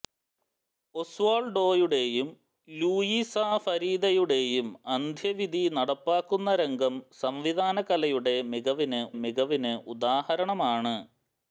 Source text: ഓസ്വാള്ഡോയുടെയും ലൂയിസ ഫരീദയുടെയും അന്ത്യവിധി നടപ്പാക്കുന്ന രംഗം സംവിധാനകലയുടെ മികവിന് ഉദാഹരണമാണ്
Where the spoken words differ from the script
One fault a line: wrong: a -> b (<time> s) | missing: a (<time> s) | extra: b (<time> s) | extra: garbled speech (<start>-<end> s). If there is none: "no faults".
extra: മികവിന് (9.2 s)